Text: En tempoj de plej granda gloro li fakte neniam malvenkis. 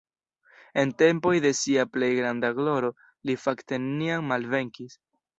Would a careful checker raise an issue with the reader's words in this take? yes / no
yes